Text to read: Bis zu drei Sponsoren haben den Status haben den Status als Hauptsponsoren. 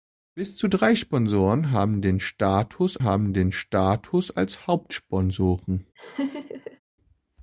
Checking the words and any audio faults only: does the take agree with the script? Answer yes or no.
no